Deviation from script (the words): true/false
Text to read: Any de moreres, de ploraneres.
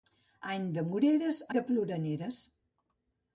false